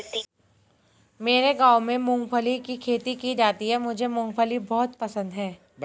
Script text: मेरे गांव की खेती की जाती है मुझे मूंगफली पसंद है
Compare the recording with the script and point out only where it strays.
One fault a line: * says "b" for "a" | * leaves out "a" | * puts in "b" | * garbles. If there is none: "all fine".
* puts in "में मूंगफली"
* puts in "बहुत"